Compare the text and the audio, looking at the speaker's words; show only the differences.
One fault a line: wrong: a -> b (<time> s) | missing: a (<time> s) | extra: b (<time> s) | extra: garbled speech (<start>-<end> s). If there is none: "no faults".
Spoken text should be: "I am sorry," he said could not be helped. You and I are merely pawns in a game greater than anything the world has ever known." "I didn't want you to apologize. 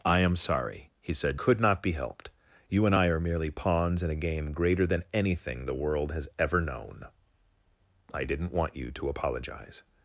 no faults